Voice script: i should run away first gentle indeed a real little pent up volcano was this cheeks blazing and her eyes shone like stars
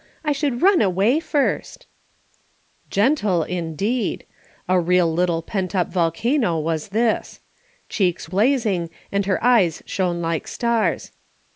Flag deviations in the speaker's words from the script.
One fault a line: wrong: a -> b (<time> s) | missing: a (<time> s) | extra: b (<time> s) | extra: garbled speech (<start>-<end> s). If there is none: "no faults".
no faults